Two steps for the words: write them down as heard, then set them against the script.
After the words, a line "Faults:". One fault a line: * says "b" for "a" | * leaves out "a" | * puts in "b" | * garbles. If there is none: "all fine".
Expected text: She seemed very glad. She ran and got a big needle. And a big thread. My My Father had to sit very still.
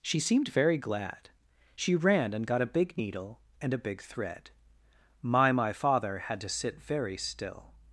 She seemed very glad. She ran and got a big needle. And a big thread. My My Father had to sit very still.
Faults:
all fine